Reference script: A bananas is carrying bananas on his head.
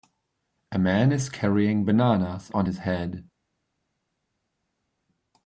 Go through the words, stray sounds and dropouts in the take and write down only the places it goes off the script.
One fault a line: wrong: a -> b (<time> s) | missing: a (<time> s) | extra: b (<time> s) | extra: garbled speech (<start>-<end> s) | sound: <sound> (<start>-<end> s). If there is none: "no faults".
wrong: bananas -> man (0.8 s)